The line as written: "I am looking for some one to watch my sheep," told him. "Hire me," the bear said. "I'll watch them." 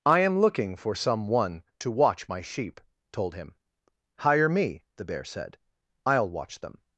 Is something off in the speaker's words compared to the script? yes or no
no